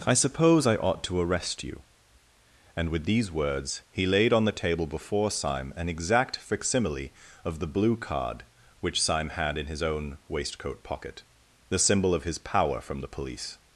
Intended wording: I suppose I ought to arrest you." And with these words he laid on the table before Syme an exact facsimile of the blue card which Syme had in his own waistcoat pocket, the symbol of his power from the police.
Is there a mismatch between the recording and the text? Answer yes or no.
no